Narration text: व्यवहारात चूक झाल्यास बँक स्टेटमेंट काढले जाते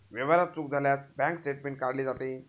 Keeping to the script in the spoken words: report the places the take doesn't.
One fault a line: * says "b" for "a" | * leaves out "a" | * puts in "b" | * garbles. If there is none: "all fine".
all fine